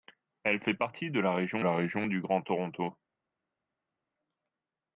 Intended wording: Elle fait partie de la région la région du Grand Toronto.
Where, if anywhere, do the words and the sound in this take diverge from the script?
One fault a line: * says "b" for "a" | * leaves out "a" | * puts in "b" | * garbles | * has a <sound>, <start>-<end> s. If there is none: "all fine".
all fine